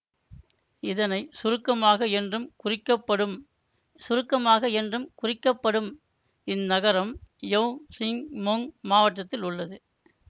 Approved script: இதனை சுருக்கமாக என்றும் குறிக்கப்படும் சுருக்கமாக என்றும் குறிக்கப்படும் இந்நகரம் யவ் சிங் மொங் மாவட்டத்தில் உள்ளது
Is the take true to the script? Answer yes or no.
yes